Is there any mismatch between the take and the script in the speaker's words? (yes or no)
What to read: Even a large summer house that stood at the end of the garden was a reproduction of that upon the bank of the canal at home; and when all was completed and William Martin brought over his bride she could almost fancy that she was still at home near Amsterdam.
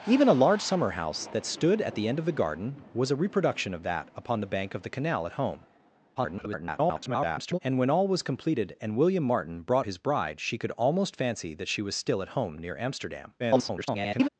yes